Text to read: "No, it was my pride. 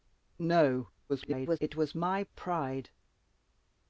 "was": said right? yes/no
yes